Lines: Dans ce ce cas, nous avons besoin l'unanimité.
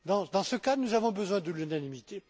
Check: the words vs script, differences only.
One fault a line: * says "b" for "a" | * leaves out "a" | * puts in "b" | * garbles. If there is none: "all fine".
* leaves out "ce"
* puts in "de"